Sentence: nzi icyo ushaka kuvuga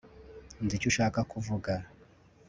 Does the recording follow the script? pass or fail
pass